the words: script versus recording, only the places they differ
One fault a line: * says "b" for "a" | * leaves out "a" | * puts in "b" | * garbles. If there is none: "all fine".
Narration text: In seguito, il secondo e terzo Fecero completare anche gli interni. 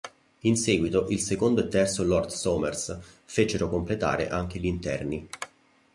* puts in "Lord Somers"